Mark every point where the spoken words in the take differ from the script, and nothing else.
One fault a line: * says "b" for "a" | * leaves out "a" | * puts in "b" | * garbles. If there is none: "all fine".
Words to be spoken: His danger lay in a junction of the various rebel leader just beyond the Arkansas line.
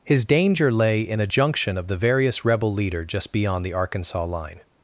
all fine